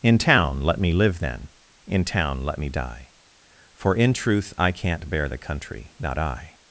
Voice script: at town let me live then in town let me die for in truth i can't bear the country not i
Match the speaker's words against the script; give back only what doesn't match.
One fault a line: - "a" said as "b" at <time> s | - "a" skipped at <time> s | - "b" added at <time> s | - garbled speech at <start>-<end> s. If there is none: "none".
- "at" said as "in" at 0.0 s